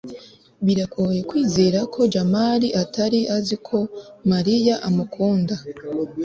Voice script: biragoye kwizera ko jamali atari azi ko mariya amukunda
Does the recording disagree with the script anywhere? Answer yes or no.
no